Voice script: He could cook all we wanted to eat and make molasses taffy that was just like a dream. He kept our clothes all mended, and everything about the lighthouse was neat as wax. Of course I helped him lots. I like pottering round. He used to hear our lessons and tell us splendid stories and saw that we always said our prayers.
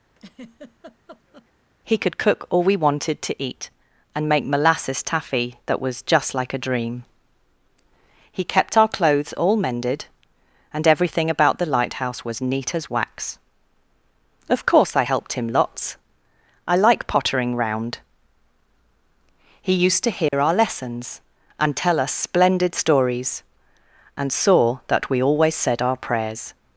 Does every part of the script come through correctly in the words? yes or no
yes